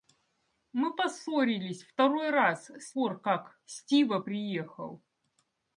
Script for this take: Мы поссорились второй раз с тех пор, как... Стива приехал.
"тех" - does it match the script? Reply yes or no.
no